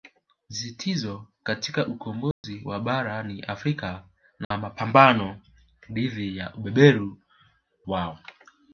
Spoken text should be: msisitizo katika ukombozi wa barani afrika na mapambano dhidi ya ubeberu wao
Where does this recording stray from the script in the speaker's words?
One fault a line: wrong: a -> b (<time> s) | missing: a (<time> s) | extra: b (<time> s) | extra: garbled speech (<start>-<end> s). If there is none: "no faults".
no faults